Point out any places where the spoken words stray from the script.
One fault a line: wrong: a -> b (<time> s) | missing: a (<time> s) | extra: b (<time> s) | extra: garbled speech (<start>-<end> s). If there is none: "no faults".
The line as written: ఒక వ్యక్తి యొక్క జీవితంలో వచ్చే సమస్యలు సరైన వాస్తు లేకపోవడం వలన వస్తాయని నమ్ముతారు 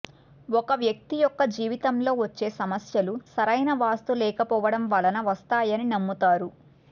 no faults